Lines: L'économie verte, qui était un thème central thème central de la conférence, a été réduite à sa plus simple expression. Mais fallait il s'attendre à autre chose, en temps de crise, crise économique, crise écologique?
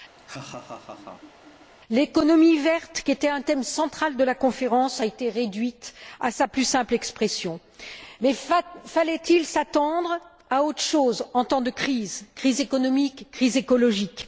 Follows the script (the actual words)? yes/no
no